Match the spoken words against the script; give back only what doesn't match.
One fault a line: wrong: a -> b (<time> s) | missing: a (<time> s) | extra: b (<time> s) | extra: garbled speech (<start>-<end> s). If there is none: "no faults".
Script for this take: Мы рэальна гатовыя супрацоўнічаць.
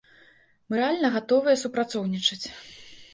no faults